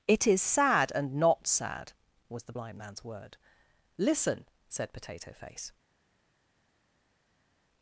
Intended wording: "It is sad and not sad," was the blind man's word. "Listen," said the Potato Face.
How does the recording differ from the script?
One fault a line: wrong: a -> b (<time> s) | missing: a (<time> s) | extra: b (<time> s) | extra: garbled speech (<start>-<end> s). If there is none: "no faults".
missing: the (4.9 s)